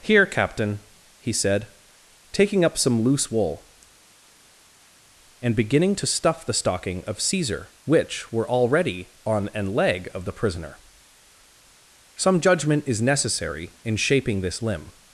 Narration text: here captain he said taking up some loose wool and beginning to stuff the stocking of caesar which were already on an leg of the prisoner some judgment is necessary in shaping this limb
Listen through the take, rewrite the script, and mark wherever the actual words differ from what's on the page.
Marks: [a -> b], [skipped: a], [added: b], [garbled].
here captain he said taking up some loose wool and beginning to stuff the stocking of caesar which were already on an leg of the prisoner some judgment is necessary in shaping this limb